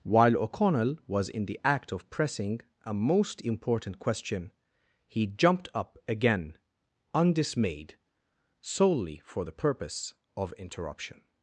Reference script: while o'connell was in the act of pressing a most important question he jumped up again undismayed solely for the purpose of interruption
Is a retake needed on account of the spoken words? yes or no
no